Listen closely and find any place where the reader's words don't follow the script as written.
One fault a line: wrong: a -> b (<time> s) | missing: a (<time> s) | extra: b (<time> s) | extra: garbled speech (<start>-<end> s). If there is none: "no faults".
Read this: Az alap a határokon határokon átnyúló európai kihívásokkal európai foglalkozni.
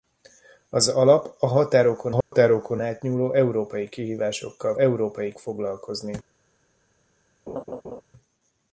no faults